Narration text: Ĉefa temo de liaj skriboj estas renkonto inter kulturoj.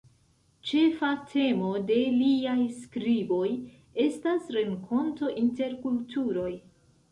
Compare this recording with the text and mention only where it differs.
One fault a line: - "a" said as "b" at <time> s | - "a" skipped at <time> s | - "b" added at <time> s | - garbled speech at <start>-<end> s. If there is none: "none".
none